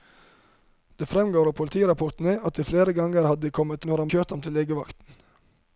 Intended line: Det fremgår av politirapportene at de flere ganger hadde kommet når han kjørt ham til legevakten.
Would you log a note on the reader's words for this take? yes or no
no